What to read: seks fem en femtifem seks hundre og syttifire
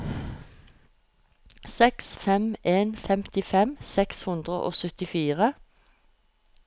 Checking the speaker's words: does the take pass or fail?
pass